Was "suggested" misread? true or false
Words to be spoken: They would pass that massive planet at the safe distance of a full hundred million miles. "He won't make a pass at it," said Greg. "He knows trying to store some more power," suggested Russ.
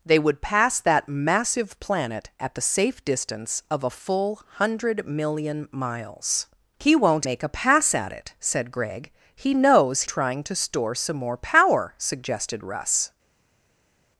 false